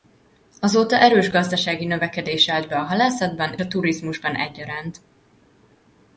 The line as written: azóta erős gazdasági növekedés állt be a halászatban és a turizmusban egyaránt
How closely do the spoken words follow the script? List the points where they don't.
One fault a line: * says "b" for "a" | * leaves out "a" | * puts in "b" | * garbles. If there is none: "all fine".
* leaves out "és"